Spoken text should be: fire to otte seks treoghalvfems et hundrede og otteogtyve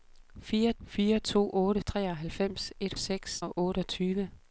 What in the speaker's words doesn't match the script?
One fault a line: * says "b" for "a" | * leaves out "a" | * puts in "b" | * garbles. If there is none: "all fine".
* puts in "fire"
* leaves out "seks"
* says "seks" for "hundrede"